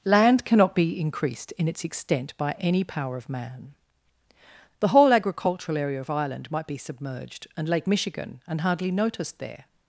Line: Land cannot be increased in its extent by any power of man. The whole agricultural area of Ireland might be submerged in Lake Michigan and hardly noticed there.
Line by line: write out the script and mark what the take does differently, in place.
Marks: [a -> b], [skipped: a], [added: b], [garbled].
Land cannot be increased in its extent by any power of man. The whole agricultural area of Ireland might be submerged [in -> and] Lake Michigan and hardly noticed there.